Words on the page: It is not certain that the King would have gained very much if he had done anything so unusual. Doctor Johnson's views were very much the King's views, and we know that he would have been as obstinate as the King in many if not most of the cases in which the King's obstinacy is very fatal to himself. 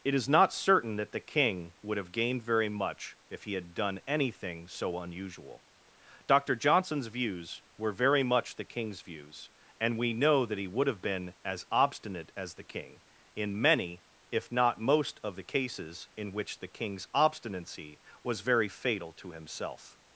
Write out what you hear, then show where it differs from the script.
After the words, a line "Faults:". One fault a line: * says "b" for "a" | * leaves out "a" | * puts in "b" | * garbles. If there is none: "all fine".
It is not certain that the King would have gained very much if he had done anything so unusual. Doctor Johnson's views were very much the King's views, and we know that he would have been as obstinate as the King in many if not most of the cases in which the King's obstinacy was very fatal to himself.
Faults:
* says "was" for "is"